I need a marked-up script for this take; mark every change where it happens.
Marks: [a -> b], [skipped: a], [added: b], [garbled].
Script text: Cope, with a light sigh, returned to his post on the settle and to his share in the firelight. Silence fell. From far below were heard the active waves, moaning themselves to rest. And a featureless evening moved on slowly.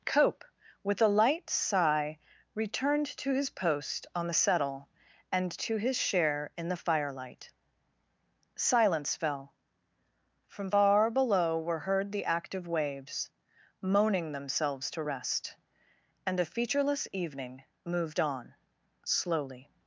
Cope, with a light sigh, returned to his post on the settle and to his share in the firelight. Silence fell. From far below were heard the active waves, moaning themselves to rest. And a featureless evening moved on slowly.